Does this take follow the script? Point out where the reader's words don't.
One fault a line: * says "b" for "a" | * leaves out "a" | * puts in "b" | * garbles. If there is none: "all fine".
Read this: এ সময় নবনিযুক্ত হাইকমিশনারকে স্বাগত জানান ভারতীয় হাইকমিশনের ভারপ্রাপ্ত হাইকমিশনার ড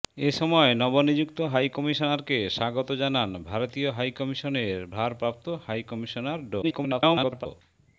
* garbles